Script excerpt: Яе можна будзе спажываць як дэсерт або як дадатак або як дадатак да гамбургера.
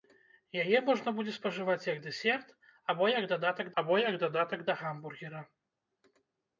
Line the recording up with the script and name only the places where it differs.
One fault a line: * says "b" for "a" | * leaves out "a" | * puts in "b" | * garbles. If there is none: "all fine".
all fine